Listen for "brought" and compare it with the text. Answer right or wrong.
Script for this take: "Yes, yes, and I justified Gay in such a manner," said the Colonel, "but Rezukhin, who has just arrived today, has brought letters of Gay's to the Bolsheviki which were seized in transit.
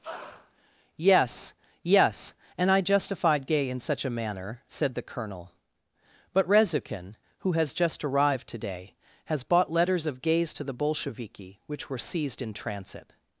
wrong